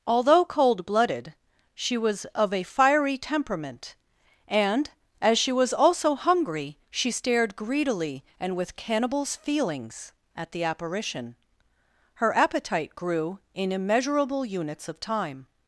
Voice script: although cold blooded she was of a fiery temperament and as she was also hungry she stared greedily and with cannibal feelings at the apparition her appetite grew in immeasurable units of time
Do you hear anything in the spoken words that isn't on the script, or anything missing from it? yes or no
yes